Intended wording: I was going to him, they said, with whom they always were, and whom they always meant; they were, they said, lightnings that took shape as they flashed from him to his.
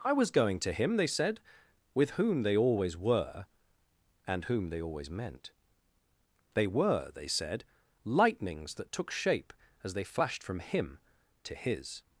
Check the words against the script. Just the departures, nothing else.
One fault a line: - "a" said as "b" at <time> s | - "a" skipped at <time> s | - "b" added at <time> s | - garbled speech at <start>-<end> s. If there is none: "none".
none